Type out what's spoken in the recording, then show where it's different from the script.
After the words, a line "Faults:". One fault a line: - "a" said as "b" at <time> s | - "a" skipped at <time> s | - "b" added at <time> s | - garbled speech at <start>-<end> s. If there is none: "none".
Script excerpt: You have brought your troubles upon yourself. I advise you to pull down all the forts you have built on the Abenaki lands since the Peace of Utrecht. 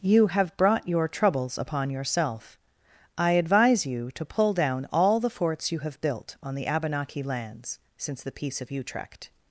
You have brought your troubles upon yourself. I advise you to pull down all the forts you have built on the Abenaki lands since the Peace of Utrecht.
Faults:
none